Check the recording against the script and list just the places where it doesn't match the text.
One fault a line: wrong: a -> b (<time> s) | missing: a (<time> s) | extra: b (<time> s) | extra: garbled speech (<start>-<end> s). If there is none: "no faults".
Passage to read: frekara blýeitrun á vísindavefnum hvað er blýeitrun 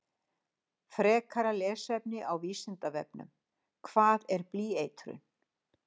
wrong: blýeitrun -> lesefni (1.6 s)